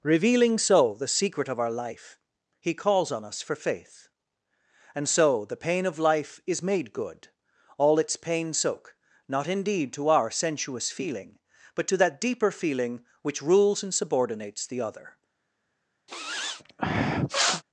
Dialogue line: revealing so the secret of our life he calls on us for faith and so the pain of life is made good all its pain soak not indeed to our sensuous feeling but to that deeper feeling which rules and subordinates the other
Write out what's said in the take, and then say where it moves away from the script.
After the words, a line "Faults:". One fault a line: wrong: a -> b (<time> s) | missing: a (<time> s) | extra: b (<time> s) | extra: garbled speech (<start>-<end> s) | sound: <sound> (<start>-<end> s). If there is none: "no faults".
revealing so the secret of our life he calls on us for faith and so the pain of life is made good all its pain soak not indeed to our sensuous feeling but to that deeper feeling which rules and subordinates the other
Faults:
sound: sniff (16.1-17.6 s)